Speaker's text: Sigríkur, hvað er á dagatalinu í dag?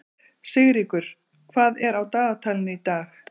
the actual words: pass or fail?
pass